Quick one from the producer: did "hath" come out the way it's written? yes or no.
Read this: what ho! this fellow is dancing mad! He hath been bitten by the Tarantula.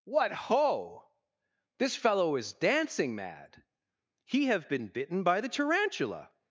no